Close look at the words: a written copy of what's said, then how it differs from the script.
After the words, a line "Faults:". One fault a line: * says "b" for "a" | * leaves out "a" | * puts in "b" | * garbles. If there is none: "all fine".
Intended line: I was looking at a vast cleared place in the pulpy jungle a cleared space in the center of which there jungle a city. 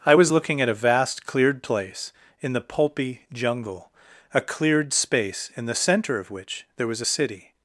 I was looking at a vast cleared place in the pulpy jungle a cleared space in the center of which there was a city.
Faults:
* says "was" for "jungle"